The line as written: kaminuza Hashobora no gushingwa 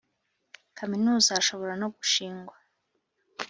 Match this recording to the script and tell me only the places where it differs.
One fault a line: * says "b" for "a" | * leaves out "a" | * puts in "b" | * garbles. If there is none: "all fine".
all fine